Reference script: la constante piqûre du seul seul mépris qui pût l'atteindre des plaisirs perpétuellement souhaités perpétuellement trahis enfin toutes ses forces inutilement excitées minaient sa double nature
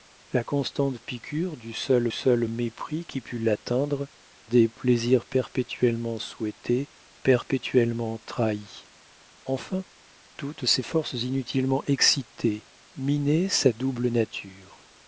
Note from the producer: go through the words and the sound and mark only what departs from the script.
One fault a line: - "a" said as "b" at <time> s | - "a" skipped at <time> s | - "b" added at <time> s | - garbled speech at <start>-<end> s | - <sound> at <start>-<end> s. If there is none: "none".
none